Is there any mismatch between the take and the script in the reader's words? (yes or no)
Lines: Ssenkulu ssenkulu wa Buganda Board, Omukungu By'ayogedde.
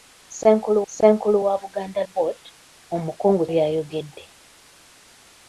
no